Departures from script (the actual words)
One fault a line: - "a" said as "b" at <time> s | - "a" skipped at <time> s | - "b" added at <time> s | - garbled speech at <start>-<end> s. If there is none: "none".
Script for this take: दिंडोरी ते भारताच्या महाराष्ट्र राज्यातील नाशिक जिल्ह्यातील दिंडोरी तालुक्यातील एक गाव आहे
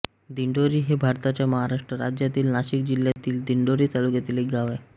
- "ते" said as "हे" at 0.8 s